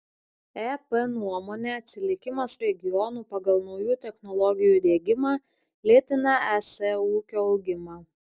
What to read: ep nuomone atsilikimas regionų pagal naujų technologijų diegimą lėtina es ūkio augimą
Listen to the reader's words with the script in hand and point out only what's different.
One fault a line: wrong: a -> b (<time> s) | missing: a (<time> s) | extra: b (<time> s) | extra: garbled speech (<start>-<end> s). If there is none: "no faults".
no faults